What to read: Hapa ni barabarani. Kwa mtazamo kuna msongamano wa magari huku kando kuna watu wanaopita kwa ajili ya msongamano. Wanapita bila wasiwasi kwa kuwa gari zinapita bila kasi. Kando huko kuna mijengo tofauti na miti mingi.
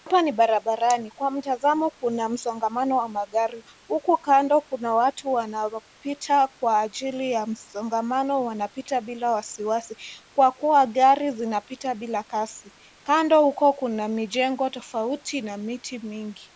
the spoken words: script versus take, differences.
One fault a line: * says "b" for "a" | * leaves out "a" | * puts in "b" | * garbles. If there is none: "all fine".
all fine